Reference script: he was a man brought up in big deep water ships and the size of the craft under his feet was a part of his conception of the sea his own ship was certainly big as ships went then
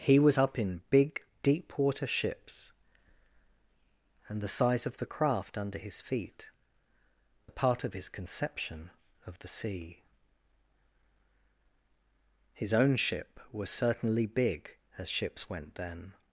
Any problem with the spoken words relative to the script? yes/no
yes